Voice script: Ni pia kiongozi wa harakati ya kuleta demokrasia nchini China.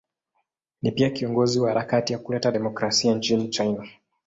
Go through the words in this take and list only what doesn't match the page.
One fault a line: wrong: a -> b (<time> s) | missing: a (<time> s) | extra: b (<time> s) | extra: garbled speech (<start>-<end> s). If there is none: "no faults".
no faults